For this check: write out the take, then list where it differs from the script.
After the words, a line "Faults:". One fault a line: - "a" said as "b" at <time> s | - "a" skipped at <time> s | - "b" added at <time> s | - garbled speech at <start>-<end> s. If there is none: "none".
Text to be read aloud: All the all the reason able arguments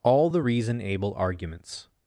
All the reason able arguments
Faults:
- "all the" skipped at 0.4 s